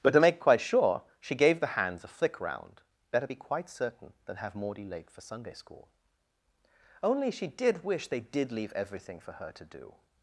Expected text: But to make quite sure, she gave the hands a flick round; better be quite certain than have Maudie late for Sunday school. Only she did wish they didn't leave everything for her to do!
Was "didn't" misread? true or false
true